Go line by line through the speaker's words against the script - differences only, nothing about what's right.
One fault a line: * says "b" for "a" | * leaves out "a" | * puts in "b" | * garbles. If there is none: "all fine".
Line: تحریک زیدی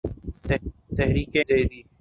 all fine